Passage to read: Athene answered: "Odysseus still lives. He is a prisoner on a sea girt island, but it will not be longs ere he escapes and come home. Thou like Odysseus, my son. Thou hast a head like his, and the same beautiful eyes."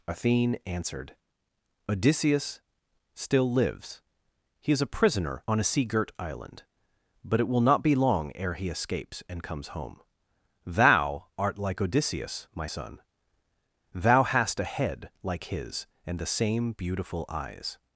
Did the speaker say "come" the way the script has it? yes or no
no